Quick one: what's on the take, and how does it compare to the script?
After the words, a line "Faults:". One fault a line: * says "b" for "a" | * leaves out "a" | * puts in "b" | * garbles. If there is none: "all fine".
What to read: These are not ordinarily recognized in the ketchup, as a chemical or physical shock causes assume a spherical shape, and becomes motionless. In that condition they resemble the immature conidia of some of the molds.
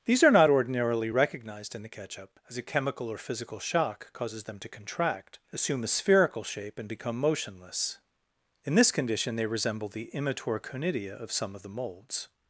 These are not ordinarily recognized in the ketchup, as a chemical or physical shock causes them to contract, assume a spherical shape, and become motionless. In this condition they resemble the immature conidia of some of the molds.
Faults:
* puts in "them to contract"
* says "become" for "becomes"
* says "this" for "that"